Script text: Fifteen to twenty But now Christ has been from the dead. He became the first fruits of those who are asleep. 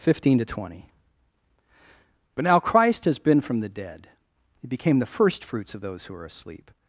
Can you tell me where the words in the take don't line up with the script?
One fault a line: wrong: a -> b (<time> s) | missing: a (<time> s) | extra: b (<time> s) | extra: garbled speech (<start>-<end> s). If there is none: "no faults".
no faults